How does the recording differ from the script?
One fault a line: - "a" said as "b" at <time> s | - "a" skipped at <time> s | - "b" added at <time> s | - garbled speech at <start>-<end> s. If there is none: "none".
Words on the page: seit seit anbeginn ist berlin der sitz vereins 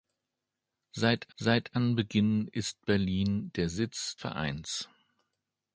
none